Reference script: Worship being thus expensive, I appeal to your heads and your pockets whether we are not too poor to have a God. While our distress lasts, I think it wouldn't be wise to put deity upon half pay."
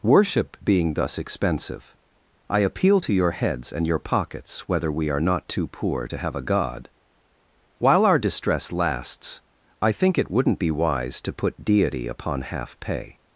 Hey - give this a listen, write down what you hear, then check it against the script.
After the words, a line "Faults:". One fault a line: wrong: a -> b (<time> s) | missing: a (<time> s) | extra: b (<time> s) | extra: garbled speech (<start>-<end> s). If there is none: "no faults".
Worship being thus expensive, I appeal to your heads and your pockets whether we are not too poor to have a God. While our distress lasts, I think it wouldn't be wise to put deity upon half pay."
Faults:
no faults